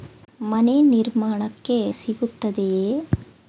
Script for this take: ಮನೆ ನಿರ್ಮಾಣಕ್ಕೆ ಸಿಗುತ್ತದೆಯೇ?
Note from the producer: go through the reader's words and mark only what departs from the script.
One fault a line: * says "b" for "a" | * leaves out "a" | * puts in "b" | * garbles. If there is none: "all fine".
all fine